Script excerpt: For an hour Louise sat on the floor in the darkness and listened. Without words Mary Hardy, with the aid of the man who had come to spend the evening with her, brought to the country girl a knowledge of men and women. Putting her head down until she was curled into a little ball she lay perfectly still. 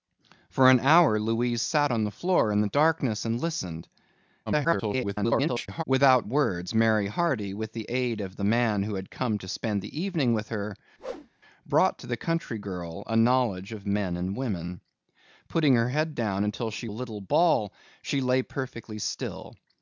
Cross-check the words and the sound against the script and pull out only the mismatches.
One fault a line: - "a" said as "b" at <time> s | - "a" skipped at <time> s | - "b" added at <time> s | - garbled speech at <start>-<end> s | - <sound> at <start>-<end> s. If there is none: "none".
- garbled speech at 4.5-5.8 s
- whoosh at 11.0-11.3 s
- "was curled into" skipped at 16.9 s